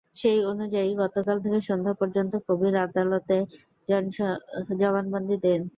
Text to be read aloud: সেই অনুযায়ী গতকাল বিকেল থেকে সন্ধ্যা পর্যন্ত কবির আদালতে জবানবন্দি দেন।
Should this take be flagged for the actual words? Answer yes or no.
yes